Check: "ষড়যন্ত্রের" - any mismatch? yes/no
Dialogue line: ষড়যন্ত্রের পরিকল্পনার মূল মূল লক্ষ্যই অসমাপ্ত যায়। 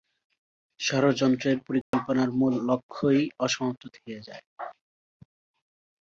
no